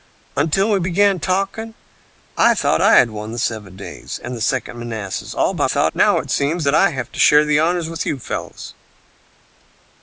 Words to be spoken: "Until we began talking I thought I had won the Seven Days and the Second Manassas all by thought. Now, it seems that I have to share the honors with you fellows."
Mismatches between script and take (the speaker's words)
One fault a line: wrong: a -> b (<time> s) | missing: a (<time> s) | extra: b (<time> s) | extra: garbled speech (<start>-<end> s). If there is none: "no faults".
no faults